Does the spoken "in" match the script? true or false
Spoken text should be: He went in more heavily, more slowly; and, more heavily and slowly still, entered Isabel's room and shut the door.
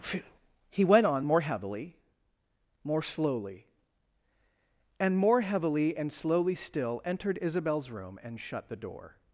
false